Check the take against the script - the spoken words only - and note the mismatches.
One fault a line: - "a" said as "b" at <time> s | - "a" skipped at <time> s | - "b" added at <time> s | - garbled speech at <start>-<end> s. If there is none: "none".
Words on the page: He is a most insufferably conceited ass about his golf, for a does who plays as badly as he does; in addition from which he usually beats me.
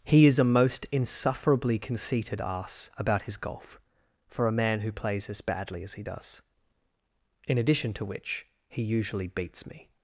- "does" said as "man" at 4.6 s
- "from" said as "to" at 7.9 s